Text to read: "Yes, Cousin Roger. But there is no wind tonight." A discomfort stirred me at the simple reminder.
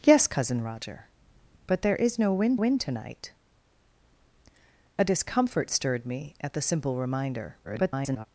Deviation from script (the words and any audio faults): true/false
true